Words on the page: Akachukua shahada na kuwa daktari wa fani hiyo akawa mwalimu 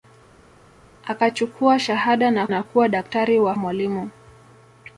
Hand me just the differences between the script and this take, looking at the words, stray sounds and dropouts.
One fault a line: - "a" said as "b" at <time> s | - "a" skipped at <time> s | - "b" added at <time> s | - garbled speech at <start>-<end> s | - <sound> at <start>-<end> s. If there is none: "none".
- "na" added at 2.5 s
- "fani hiyo akawa" skipped at 3.6 s